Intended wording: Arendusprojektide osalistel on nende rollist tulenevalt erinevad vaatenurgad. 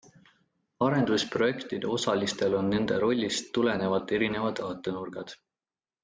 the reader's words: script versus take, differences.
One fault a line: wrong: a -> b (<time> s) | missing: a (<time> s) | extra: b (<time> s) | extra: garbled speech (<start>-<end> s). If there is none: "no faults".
no faults